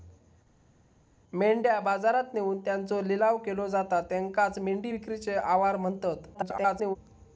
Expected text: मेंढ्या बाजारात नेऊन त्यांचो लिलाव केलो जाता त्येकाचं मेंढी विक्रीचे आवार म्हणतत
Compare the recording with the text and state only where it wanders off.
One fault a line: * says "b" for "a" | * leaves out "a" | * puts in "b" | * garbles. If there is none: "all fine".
* garbles